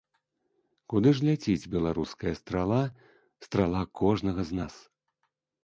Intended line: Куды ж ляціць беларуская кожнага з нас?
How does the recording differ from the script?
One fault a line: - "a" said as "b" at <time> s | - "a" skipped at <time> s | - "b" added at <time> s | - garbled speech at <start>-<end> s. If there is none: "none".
- "страла страла" added at 2.4 s